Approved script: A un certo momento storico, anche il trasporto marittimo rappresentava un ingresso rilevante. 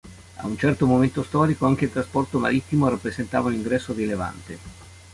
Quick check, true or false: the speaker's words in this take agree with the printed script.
true